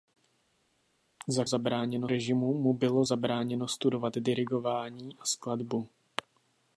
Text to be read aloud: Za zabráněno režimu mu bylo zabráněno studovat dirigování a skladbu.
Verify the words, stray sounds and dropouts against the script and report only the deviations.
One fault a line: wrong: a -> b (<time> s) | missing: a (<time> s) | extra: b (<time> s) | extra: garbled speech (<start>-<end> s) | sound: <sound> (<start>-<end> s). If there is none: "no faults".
no faults